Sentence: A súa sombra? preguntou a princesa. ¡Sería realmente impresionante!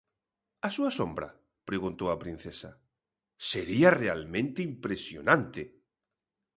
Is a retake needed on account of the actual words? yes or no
no